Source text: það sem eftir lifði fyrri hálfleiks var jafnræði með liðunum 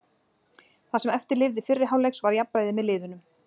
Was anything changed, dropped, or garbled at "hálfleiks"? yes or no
no